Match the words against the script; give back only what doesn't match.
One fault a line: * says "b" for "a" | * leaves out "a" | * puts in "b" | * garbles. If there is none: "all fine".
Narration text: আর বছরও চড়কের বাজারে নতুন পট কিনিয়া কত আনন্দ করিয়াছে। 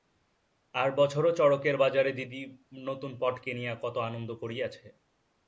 * puts in "দিদি"